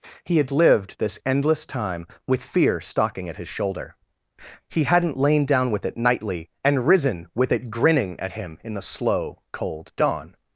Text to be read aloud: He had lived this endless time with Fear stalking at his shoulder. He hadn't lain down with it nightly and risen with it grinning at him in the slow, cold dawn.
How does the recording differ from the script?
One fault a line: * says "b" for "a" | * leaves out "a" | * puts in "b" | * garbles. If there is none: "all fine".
all fine